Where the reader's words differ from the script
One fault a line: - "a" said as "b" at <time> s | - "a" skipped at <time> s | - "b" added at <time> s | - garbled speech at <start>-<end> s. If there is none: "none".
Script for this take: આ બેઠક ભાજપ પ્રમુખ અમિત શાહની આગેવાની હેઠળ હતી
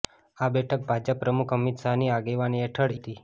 none